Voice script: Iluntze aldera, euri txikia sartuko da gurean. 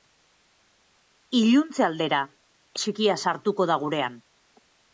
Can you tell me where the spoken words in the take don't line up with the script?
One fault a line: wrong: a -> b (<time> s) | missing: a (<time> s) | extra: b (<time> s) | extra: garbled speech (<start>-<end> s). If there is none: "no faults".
missing: euri (2.2 s)